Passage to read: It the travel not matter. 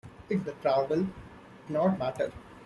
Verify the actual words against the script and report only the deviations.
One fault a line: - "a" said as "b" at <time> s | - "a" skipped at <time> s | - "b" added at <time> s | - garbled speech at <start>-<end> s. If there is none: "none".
none